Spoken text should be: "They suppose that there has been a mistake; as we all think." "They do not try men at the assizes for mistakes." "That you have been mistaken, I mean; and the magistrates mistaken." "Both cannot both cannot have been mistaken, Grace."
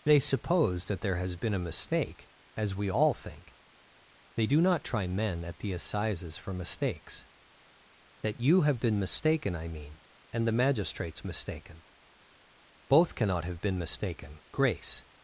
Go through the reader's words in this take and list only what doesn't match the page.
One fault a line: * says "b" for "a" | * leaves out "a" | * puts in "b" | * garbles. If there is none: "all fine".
* leaves out "both cannot"